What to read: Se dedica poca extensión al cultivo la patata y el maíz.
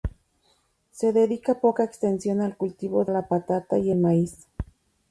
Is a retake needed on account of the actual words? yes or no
no